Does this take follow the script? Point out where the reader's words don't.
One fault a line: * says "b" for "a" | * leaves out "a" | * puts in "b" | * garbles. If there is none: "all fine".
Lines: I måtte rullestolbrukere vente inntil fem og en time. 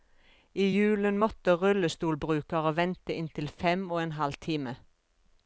* puts in "julen"
* puts in "halv"